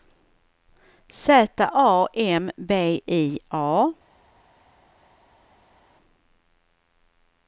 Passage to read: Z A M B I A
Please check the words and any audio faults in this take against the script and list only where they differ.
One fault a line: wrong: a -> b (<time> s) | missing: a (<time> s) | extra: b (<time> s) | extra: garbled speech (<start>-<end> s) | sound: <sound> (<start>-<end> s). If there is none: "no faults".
no faults